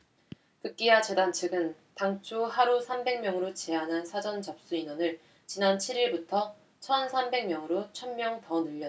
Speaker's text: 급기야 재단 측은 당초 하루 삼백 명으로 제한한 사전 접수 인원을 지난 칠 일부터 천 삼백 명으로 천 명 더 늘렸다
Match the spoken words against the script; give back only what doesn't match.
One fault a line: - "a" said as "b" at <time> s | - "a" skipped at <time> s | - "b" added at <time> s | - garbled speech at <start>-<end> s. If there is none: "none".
none